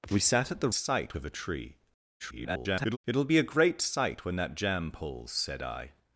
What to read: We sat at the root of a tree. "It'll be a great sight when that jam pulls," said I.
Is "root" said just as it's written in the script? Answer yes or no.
no